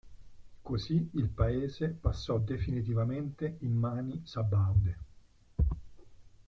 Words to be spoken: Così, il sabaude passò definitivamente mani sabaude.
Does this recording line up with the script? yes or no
no